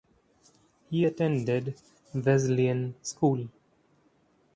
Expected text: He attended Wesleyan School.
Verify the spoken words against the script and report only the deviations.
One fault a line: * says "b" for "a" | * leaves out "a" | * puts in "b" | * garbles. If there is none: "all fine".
all fine